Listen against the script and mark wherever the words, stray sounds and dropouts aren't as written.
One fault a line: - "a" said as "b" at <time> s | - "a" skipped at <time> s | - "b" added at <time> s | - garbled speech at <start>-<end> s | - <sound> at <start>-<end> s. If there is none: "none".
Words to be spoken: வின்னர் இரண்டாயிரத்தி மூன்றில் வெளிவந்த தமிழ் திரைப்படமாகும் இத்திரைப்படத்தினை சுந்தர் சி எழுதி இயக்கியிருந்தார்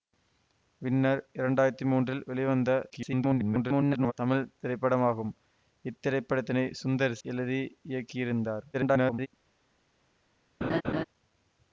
- garbled speech at 2.9-4.1 s
- "சி" skipped at 7.2 s
- garbled speech at 8.7-9.3 s
- laugh at 10.6-11.0 s